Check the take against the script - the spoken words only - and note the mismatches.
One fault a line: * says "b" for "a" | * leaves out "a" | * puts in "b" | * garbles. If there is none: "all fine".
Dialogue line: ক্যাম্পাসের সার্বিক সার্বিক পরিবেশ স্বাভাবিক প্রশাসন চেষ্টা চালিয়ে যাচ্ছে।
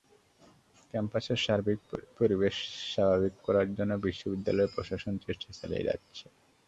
* leaves out "সার্বিক"
* puts in "করার জন্য বিশ্ববিদ্যালয়"